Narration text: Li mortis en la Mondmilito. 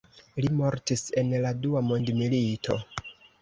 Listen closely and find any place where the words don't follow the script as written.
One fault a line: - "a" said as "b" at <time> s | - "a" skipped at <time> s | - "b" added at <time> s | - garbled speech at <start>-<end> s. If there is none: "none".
- "Dua" added at 1.7 s